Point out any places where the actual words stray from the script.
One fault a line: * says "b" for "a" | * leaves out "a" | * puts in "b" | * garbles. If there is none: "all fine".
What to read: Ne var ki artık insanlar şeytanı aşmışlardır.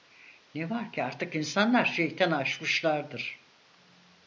all fine